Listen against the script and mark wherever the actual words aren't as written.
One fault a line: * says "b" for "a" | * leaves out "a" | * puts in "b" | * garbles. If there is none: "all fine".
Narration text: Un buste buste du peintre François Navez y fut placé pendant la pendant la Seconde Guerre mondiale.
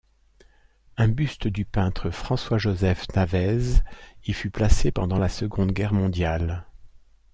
* leaves out "buste"
* puts in "Joseph"
* leaves out "pendant la"